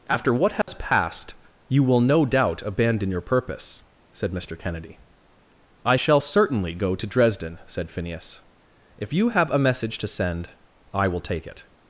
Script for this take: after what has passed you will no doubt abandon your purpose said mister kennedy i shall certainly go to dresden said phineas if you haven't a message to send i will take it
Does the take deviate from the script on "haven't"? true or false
true